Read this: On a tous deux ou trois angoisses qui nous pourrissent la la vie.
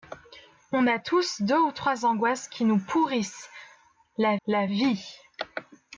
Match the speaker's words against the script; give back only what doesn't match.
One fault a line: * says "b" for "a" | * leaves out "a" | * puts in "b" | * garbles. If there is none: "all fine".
all fine